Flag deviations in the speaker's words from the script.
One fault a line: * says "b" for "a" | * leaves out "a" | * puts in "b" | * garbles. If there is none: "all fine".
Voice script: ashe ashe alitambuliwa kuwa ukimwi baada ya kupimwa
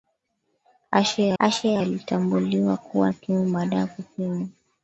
all fine